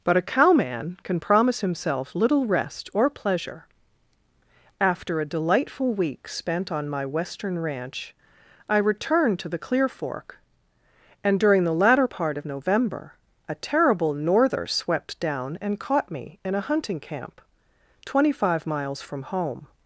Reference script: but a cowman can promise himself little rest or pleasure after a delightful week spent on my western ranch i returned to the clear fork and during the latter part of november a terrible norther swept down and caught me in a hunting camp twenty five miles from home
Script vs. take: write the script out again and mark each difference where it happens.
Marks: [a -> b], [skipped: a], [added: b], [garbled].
but a cowman can promise himself little rest or pleasure after a delightful week spent on my western ranch i returned to the clear fork and during the latter part of november a terrible norther swept down and caught me in a hunting camp twenty five miles from home